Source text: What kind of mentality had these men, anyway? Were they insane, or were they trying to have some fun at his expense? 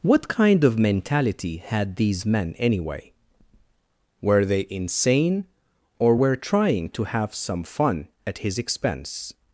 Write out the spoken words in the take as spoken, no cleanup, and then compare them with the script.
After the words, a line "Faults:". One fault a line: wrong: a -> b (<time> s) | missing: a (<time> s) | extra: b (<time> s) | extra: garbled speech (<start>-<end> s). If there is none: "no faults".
What kind of mentality had these men, anyway? Were they insane, or were trying to have some fun at his expense?
Faults:
missing: they (6.4 s)